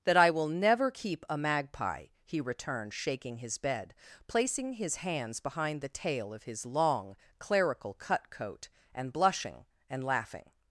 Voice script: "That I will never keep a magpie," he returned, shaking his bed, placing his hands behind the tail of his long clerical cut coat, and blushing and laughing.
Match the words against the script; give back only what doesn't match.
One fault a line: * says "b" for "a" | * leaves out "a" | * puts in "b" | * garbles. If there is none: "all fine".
all fine